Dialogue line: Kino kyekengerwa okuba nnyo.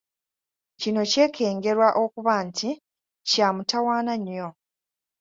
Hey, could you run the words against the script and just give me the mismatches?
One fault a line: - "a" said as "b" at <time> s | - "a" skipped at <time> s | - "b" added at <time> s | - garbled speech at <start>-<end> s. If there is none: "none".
- "nti kya mutawaana" added at 2.5 s